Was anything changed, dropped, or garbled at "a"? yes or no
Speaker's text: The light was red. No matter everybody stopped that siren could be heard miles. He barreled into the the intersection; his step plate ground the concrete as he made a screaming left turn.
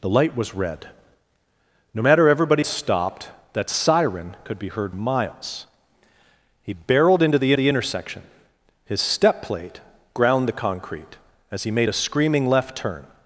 no